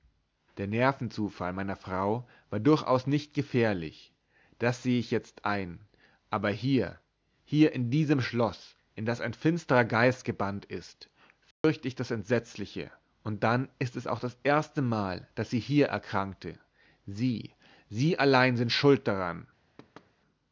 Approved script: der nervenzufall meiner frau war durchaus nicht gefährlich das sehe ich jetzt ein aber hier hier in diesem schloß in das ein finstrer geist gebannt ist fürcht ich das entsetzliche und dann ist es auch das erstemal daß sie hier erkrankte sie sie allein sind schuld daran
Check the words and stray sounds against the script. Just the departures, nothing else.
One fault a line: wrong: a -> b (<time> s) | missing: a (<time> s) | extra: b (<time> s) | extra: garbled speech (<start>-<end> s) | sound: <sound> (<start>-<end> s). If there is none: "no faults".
sound: dropout (11.5-11.6 s)
sound: thud (19.8-20.1 s)